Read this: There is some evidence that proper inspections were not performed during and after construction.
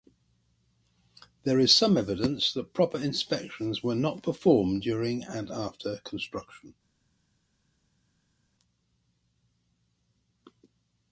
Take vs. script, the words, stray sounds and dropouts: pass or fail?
pass